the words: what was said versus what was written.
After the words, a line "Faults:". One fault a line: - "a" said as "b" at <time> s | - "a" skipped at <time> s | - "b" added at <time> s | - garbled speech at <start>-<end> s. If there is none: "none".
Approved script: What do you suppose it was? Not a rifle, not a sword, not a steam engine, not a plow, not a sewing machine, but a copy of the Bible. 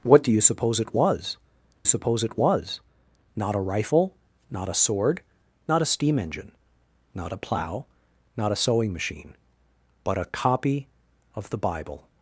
What do you suppose it was suppose it was? Not a rifle, not a sword, not a steam engine, not a plow, not a sewing machine, but a copy of the Bible.
Faults:
- "suppose it was" added at 1.9 s